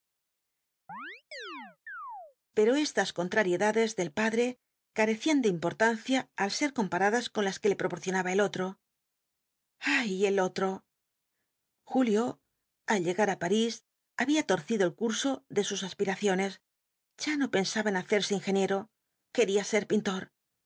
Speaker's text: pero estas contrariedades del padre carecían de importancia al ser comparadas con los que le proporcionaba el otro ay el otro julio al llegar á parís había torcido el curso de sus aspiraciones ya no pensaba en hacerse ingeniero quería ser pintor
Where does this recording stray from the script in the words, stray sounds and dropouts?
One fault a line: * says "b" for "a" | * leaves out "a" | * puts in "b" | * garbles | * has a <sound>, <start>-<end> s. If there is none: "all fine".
* has a chirp, 0.9-2.4 s
* says "las" for "los"